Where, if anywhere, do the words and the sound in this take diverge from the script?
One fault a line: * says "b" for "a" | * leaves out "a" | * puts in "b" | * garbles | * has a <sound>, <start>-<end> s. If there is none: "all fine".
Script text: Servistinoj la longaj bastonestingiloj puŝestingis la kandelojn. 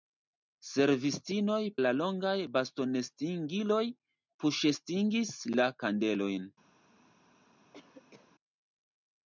* has a cough, 7.7-8.3 s